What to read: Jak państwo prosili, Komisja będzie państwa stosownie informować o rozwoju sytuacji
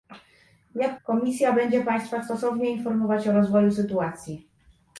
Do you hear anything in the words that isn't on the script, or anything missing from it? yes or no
yes